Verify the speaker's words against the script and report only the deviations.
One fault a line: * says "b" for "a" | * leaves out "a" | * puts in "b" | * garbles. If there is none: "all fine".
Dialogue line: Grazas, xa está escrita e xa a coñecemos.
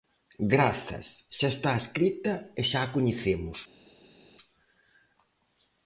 all fine